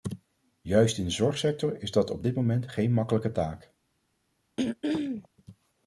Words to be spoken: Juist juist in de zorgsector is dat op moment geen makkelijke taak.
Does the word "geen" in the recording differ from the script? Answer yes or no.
no